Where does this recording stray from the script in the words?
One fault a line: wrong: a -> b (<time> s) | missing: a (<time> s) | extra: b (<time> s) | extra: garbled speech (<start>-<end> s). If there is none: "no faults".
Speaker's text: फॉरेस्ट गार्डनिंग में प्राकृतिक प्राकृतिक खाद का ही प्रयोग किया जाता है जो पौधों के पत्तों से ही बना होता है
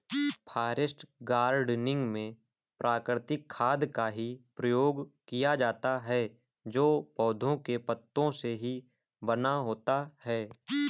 missing: प्राकृतिक (3.5 s)